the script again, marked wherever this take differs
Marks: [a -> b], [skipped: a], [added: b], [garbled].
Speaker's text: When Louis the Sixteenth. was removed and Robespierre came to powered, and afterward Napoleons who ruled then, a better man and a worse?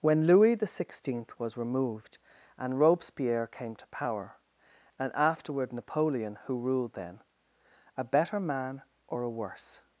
When Louis the Sixteenth. was removed and Robespierre came to [powered, -> power] and afterward [Napoleons -> Napoleon] who ruled then, a better man [and -> or] a worse?